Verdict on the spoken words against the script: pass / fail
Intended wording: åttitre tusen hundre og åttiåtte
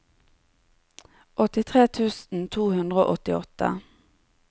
fail